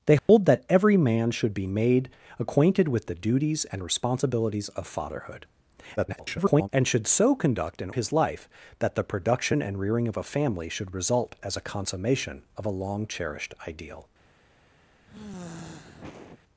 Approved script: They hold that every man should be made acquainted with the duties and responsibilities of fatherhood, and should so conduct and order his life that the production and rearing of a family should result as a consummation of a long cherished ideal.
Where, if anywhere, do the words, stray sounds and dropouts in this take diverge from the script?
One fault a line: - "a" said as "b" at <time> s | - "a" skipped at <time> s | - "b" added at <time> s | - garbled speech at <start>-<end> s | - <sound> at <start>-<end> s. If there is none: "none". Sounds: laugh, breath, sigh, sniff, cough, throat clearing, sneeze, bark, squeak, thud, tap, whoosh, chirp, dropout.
- dropout at 0.2-0.3 s
- garbled speech at 6.0-6.7 s
- "order" skipped at 7.9 s
- sigh at 15.1-16.4 s